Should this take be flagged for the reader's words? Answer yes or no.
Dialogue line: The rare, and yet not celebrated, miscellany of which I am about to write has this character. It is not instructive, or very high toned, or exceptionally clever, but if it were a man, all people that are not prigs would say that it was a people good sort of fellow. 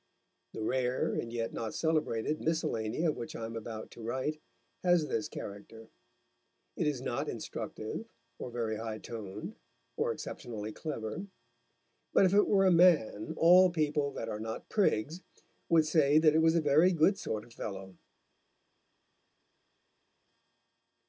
yes